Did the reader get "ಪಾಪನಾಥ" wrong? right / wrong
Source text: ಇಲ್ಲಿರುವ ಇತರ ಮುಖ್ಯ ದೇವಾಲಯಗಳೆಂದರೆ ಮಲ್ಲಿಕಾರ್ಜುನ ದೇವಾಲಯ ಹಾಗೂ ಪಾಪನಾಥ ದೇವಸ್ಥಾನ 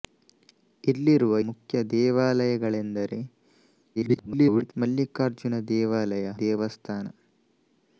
wrong